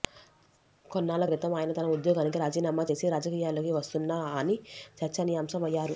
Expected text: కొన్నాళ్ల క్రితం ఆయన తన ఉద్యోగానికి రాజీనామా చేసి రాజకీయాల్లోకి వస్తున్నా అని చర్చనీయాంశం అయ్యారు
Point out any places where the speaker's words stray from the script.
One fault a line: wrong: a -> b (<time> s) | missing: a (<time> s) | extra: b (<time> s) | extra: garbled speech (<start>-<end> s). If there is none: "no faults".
no faults